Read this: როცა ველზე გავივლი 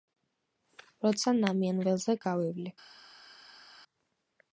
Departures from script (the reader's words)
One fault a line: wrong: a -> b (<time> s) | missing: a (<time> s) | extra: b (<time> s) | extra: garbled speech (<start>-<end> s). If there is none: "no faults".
extra: ნამიან (1.4 s)